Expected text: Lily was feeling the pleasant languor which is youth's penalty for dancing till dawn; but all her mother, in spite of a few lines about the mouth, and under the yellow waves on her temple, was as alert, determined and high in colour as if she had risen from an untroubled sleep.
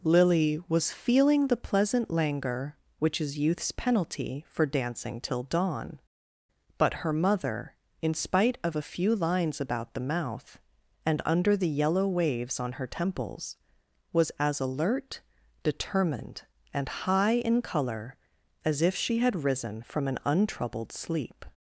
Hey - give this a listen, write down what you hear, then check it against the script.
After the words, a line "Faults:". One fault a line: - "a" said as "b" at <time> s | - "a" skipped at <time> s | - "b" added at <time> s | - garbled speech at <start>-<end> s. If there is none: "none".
Lily was feeling the pleasant languor which is youth's penalty for dancing till dawn; but her mother, in spite of a few lines about the mouth, and under the yellow waves on her temples, was as alert, determined and high in colour as if she had risen from an untroubled sleep.
Faults:
- "all" skipped at 7.0 s
- "temple" said as "temples" at 12.9 s